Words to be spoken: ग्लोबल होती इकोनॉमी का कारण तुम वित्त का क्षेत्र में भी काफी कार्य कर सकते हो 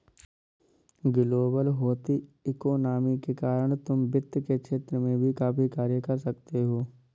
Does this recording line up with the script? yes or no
no